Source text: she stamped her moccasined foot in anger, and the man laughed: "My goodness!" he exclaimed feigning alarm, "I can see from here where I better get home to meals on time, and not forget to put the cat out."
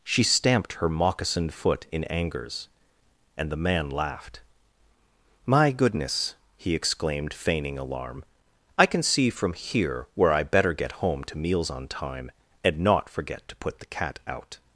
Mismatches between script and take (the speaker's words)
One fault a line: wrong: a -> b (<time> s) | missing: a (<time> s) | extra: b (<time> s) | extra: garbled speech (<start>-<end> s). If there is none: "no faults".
wrong: anger -> angers (2.0 s)